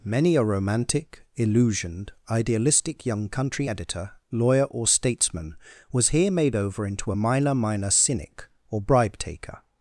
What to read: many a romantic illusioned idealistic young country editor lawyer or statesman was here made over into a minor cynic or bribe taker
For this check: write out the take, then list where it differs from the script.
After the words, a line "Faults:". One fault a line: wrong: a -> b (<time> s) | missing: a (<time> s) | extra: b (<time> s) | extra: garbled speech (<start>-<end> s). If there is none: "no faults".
many a romantic illusioned idealistic young country editor lawyer or statesman was here made over into a minor minor cynic or bribe taker
Faults:
extra: minor (7.5 s)